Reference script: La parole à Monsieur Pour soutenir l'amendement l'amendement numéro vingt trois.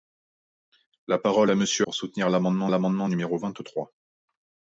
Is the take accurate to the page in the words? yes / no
yes